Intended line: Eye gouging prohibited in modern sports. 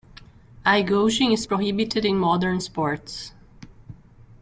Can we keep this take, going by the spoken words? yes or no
no